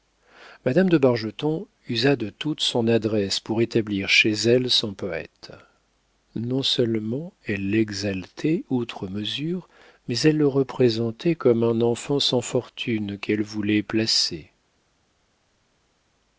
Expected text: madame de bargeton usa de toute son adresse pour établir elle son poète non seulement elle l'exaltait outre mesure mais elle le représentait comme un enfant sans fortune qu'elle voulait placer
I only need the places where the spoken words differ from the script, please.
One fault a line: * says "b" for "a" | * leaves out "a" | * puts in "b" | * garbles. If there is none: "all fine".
* puts in "chez"